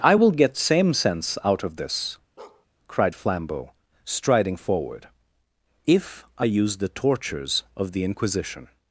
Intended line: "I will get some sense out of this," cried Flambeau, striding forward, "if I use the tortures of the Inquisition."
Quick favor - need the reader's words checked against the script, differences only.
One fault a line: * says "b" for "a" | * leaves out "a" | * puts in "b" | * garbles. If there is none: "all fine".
* says "same" for "some"